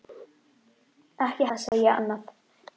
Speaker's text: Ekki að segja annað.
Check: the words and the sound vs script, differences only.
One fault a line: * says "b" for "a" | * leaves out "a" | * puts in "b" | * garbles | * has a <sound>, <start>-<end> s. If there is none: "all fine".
* has a dropout, 1.7-1.7 s